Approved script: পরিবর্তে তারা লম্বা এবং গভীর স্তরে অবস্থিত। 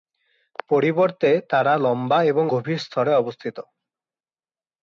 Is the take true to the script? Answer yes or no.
yes